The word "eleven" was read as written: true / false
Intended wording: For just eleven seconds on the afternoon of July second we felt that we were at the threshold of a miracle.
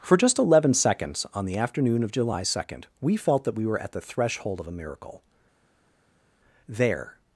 true